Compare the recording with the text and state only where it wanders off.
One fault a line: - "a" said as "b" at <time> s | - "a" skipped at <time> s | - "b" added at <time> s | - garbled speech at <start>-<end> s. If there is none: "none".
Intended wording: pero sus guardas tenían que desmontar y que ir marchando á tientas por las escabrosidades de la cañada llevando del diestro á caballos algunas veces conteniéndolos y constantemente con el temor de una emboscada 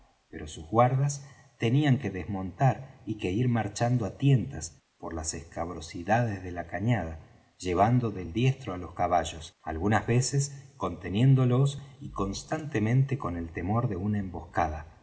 - "los" added at 8.8 s